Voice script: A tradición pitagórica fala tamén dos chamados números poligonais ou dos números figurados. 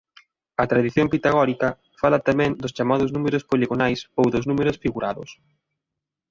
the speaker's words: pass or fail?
pass